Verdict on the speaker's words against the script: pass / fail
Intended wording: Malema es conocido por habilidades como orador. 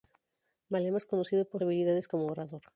pass